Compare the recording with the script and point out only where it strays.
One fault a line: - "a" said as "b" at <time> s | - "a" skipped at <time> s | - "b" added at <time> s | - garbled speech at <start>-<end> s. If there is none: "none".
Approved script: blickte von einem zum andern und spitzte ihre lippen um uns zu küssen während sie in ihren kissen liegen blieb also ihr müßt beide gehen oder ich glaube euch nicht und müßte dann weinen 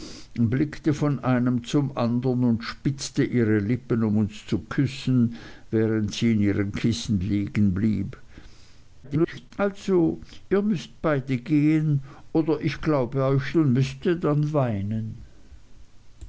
- garbled speech at 9.0-9.5 s
- "nicht" skipped at 13.6 s